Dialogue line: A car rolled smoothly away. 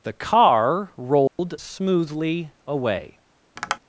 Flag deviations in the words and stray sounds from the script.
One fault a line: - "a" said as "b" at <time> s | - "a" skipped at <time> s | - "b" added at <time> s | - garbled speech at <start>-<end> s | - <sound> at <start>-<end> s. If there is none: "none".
- "A" said as "The" at 0.0 s
- dropout at 1.3-1.4 s
- tap at 3.6-3.8 s